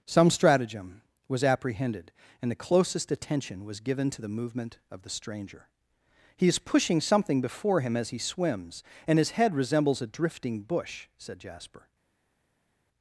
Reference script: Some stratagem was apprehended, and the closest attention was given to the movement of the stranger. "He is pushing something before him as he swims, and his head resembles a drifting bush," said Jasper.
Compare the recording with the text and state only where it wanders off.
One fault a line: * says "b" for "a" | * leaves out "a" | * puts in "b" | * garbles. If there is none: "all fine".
all fine